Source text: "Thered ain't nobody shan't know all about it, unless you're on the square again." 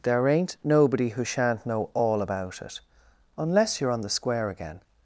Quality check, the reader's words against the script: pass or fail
fail